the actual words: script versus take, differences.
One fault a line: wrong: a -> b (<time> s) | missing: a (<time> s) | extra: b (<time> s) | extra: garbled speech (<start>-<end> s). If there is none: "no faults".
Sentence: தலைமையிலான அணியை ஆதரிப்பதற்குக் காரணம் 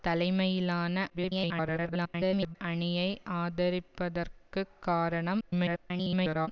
extra: garbled speech (1.1-2.6 s)
extra: garbled speech (5.4-6.5 s)